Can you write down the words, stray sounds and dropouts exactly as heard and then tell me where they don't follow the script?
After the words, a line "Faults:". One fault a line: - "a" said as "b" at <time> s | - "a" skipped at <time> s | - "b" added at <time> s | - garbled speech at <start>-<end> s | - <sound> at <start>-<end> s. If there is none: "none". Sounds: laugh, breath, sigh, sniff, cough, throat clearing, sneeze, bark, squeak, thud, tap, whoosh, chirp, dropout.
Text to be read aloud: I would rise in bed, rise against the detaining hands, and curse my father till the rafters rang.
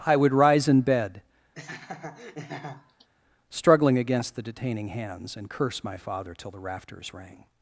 I would rise in bed, struggling against the detaining hands, and curse my father till the rafters rang.
Faults:
- laugh at 1.5-3.1 s
- "rise" said as "struggling" at 3.5 s